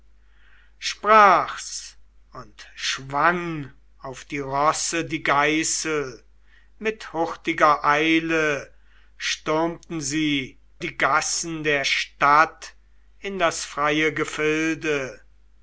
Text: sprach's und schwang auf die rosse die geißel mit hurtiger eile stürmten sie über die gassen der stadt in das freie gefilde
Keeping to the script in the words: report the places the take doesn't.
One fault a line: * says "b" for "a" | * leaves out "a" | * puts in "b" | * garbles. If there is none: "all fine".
* leaves out "über"